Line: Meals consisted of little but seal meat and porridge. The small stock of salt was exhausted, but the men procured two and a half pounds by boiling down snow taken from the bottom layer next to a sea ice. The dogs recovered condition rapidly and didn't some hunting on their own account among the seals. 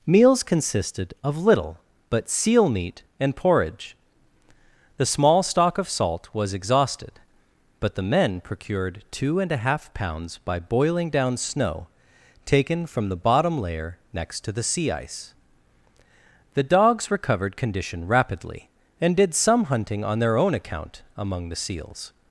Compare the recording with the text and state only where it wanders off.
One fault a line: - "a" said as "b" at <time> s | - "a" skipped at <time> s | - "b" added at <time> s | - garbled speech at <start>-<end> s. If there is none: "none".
- "a" said as "the" at 14.5 s
- "didn't" said as "did" at 19.1 s